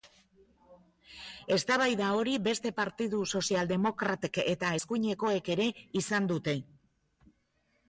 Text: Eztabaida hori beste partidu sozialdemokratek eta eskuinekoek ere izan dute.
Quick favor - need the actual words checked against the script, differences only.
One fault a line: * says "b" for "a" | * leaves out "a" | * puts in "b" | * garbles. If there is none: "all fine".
all fine